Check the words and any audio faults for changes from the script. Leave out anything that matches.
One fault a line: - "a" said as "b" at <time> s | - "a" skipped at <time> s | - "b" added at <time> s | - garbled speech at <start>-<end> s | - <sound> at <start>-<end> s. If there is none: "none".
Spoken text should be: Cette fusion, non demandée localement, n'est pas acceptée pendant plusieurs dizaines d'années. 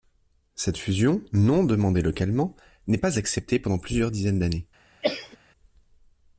- cough at 5.0-5.4 s